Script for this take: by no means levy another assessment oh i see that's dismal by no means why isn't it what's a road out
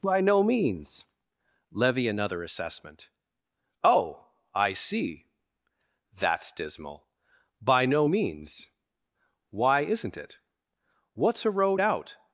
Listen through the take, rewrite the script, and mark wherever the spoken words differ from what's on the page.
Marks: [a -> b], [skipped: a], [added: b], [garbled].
by no means levy another assessment oh i see that's dismal by no means why isn't it what's a road out